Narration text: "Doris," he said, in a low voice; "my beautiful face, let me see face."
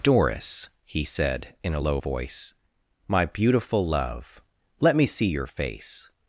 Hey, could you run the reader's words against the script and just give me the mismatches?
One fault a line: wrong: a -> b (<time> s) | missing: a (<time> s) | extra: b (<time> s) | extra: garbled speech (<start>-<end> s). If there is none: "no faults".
wrong: face -> love (3.9 s)
extra: your (5.3 s)